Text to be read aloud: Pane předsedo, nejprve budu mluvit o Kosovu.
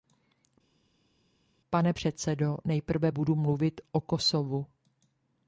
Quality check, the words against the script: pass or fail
pass